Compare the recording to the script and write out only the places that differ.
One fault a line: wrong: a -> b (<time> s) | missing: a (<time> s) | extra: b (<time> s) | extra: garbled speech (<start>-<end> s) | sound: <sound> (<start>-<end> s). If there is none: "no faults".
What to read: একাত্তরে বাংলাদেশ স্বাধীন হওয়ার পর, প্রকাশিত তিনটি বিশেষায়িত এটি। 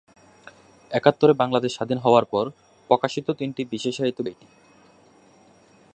no faults